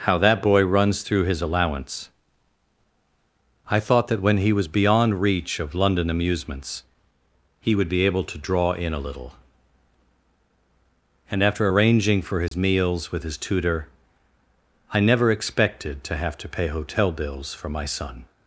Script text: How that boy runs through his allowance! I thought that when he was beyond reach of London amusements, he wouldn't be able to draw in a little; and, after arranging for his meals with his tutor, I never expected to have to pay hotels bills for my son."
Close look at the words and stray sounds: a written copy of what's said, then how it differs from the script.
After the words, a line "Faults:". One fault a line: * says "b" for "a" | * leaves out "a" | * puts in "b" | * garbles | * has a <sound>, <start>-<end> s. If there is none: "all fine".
How that boy runs through his allowance! I thought that when he was beyond reach of London amusements, he would be able to draw in a little; and, after arranging for his meals with his tutor, I never expected to have to pay hotel bills for my son."
Faults:
* says "would" for "wouldn't"
* has a dropout, 12.5-12.5 s
* says "hotel" for "hotels"